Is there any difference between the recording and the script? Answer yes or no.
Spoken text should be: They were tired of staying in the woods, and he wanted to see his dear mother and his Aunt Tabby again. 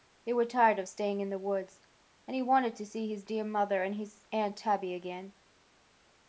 no